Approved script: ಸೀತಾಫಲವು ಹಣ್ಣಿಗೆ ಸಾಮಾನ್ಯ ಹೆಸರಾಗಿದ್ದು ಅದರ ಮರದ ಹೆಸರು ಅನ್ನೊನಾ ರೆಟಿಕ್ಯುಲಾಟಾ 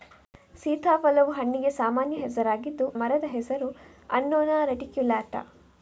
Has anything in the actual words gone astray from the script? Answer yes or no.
yes